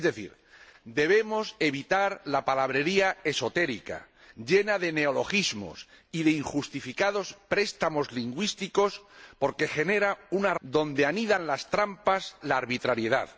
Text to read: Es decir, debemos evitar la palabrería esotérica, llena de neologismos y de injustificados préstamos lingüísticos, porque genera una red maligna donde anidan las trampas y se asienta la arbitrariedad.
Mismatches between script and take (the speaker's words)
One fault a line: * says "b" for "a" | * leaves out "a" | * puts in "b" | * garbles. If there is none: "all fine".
* leaves out "red maligna"
* leaves out "y se asienta"